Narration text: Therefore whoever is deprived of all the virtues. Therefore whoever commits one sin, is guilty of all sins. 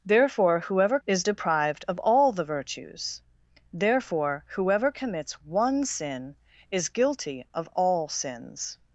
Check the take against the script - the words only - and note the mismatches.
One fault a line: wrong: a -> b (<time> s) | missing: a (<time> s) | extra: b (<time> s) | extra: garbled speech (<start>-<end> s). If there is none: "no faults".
no faults